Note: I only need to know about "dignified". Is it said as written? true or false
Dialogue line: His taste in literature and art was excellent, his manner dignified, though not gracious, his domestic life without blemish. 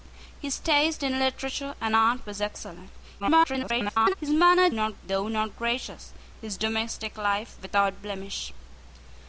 false